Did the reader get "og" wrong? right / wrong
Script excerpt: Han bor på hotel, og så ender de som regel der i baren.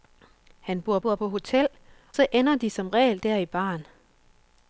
wrong